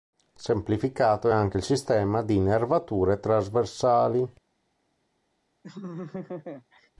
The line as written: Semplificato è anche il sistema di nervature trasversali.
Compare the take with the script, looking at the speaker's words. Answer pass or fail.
pass